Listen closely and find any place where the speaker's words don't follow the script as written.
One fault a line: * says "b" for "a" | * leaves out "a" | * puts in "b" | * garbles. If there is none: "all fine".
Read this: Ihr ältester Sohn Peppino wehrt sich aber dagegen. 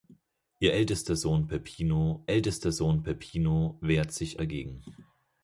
* puts in "ältester Sohn Peppino"
* leaves out "aber"